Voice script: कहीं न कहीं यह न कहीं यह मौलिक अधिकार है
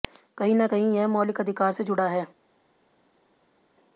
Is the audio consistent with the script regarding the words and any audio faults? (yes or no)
no